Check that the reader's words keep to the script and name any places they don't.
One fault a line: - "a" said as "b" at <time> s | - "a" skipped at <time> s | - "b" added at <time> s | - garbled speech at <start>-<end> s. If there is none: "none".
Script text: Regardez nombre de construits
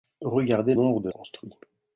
none